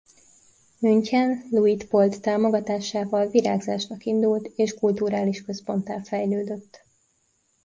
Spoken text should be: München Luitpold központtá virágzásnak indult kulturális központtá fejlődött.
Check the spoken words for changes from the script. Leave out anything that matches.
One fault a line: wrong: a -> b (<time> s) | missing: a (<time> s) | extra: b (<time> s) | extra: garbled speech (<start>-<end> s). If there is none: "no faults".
wrong: központtá -> támogatásával (2.2 s)
extra: és (4.5 s)